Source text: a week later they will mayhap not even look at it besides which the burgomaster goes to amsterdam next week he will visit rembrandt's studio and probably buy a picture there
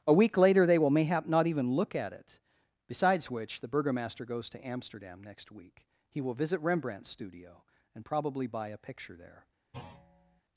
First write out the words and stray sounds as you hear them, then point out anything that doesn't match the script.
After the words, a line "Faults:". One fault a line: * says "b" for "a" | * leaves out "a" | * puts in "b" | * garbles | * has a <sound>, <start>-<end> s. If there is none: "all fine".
a week later they will mayhap not even look at it besides which the burgomaster goes to amsterdam next week he will visit rembrandt's studio and probably buy a picture there
Faults:
* has a thud, 9.7-10.4 s